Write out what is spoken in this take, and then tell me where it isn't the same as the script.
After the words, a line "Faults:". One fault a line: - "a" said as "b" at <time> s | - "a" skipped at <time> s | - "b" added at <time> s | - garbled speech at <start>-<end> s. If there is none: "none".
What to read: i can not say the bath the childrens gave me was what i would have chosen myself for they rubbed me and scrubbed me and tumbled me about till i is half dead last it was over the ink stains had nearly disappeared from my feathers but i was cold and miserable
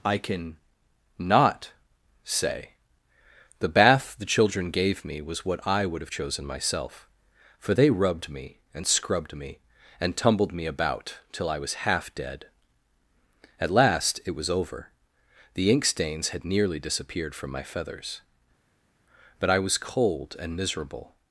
i can not say the bath the children gave me was what i would have chosen myself for they rubbed me and scrubbed me and tumbled me about till i was half dead at last it was over the ink stains had nearly disappeared from my feathers but i was cold and miserable
Faults:
- "childrens" said as "children" at 4.2 s
- "is" said as "was" at 11.6 s
- "at" added at 13.6 s